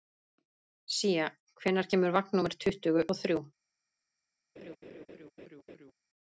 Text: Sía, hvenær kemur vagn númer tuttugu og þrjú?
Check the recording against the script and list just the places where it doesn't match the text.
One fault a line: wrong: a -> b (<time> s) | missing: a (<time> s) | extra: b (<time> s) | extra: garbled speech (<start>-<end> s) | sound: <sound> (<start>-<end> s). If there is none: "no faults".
sound: laugh (4.6-5.9 s)